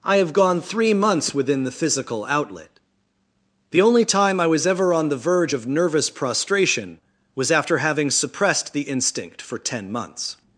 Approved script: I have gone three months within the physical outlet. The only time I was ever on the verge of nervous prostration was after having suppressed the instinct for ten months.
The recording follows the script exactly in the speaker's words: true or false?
true